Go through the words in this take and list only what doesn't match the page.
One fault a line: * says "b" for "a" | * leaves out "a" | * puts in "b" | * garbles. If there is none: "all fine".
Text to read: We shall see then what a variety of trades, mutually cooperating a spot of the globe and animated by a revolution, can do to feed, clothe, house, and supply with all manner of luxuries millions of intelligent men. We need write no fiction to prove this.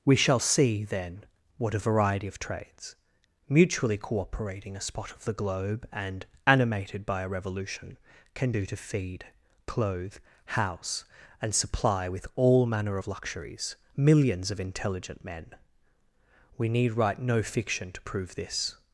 all fine